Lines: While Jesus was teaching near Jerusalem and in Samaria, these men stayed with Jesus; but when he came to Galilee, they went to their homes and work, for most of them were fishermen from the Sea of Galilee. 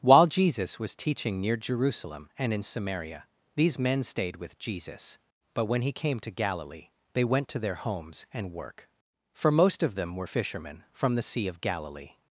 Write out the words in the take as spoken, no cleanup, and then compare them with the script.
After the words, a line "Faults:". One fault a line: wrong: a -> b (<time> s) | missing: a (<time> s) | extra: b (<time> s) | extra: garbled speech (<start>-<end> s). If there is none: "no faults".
While Jesus was teaching near Jerusalem and in Samaria, these men stayed with Jesus; but when he came to Galilee, they went to their homes and work, for most of them were fishermen from the Sea of Galilee.
Faults:
no faults